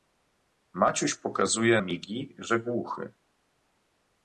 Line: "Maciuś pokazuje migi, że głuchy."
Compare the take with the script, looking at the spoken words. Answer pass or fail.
pass